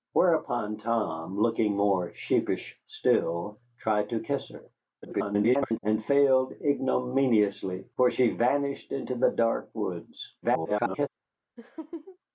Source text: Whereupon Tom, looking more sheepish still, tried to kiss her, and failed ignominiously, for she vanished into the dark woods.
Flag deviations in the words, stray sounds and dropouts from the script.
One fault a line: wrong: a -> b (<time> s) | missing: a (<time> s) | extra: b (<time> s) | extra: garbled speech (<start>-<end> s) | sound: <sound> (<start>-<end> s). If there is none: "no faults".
extra: garbled speech (5.0-5.8 s)
extra: garbled speech (10.4-11.1 s)
sound: laugh (11.6-12.2 s)